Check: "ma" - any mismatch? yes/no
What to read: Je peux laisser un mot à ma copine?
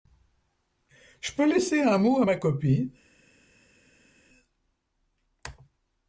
no